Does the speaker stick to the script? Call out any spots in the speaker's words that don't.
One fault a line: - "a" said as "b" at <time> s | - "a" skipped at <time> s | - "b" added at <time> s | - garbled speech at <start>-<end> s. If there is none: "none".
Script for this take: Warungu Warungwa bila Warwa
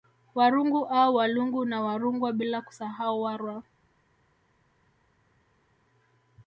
- "au Walungu na" added at 0.8 s
- "kusahau" added at 2.6 s